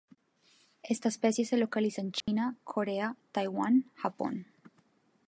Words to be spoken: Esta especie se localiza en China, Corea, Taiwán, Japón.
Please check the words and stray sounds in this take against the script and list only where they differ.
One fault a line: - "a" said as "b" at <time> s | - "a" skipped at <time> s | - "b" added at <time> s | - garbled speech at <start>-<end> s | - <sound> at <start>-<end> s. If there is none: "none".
- dropout at 2.2-2.3 s